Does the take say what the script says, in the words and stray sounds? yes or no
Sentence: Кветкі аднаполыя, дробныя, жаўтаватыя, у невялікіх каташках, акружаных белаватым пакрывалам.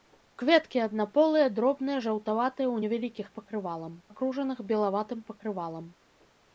no